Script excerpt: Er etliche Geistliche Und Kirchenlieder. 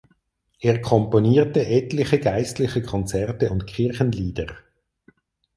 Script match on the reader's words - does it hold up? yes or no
no